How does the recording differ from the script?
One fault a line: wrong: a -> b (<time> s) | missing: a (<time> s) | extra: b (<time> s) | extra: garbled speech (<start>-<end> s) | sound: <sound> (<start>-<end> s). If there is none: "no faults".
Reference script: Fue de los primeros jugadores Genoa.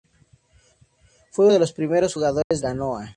sound: dropout (2.4-2.5 s)